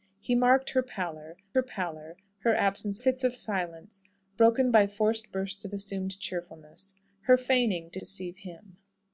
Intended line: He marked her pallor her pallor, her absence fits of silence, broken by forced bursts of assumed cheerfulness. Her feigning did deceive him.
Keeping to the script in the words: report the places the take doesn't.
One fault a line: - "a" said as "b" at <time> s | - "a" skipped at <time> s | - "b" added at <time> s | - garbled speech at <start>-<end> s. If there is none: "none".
none